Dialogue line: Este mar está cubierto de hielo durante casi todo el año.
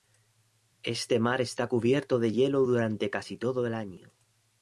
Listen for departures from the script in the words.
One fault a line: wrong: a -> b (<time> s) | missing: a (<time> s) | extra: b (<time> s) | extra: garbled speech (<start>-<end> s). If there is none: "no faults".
no faults